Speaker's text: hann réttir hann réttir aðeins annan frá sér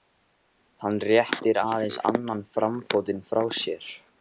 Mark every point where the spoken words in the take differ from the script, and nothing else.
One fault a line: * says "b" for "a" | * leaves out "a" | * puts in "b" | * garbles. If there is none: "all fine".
* leaves out "hann réttir"
* puts in "framfótinn"